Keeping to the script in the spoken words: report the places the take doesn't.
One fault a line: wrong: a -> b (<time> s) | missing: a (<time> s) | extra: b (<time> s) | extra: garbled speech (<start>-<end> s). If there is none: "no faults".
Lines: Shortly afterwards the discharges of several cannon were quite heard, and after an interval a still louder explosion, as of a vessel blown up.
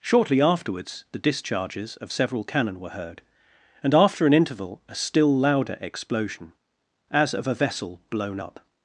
missing: quite (2.9 s)